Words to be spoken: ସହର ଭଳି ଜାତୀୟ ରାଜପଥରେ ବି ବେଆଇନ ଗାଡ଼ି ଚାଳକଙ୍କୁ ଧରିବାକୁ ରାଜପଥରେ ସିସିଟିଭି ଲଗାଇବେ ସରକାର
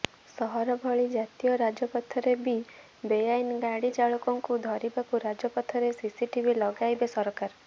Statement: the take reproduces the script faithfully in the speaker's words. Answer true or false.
true